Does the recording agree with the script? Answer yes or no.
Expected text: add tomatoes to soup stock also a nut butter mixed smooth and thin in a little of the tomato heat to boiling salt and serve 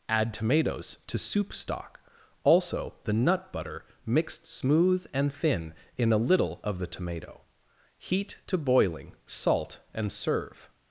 no